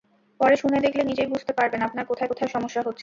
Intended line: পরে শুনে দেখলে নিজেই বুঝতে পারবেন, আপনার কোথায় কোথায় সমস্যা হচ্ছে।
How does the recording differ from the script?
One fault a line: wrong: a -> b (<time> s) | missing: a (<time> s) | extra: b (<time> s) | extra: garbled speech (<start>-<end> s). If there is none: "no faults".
no faults